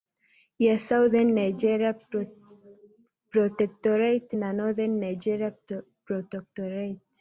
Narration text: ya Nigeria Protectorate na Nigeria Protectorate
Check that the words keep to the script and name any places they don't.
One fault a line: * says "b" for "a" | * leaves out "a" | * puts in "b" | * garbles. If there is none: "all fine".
* puts in "Southern"
* puts in "Northern"